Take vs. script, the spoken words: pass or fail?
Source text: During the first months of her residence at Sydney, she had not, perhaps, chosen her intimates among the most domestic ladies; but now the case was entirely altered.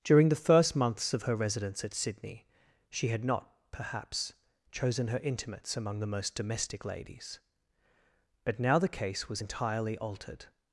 pass